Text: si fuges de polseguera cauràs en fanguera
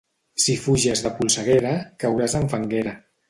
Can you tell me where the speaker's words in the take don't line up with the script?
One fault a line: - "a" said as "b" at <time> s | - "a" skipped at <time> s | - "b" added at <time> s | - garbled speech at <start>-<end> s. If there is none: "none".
none